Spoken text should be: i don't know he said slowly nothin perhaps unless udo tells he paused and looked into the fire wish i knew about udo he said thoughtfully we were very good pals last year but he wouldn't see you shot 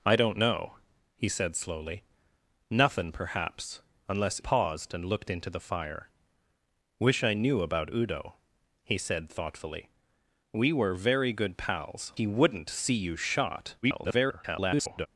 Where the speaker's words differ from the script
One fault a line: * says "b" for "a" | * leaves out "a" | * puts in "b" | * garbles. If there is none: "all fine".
* leaves out "udo tells he"
* leaves out "last year but"
* garbles